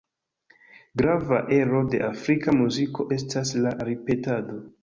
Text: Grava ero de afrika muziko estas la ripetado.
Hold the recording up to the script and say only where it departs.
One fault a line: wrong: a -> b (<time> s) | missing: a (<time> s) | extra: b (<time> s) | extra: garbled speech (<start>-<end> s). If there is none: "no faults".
no faults